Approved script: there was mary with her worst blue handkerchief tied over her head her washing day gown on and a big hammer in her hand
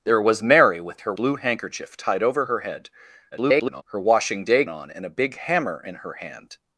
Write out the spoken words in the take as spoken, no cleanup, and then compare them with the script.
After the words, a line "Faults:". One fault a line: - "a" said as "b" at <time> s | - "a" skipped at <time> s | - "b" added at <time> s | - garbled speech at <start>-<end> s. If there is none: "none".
there was mary with her blue handkerchief tied over her head [garbled] her washing day on and a big hammer in her hand
Faults:
- "worst" skipped at 1.1 s
- garbled speech at 3.3-3.8 s
- "gown" skipped at 4.7 s